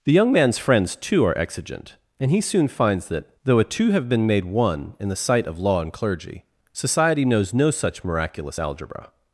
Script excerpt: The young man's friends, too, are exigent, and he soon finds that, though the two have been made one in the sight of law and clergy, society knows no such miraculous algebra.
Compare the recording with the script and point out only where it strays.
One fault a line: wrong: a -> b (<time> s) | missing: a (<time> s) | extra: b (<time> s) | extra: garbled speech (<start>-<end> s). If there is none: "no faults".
wrong: the -> a (3.6 s)